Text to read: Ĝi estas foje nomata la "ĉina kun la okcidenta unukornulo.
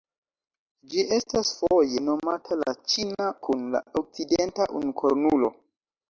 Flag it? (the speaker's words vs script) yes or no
no